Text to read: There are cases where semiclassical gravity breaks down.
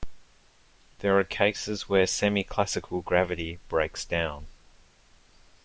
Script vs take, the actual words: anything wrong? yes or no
no